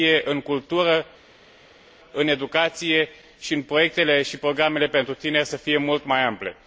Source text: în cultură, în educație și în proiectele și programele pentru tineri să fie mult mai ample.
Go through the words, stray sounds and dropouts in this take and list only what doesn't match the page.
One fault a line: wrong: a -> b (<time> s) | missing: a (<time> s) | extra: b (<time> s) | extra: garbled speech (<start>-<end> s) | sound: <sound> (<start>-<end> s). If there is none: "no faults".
no faults